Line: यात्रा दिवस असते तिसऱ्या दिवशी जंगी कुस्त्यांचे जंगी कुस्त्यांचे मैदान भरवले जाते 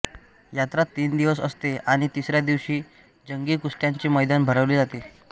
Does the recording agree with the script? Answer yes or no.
no